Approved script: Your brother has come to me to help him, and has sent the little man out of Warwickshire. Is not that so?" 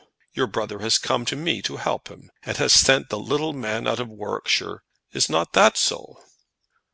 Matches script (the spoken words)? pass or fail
pass